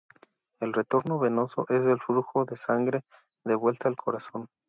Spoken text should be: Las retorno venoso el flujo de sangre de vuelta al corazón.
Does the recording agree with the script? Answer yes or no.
no